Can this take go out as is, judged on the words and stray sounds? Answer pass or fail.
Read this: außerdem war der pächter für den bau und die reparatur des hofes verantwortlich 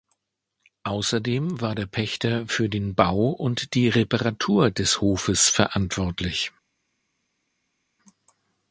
pass